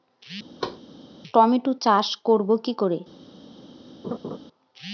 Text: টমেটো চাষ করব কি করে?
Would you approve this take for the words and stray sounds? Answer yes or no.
no